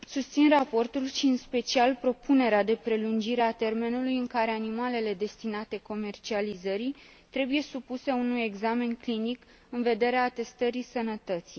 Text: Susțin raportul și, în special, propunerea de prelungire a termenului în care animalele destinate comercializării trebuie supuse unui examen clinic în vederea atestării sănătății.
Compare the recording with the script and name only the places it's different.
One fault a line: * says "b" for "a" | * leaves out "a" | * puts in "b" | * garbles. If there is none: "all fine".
all fine